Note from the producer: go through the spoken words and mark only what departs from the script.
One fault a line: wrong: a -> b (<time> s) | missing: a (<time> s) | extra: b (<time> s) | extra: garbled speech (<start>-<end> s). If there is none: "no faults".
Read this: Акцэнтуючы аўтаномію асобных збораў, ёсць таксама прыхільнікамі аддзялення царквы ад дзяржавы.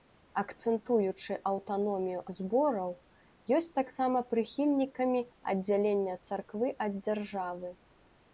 missing: асобных (2.2 s)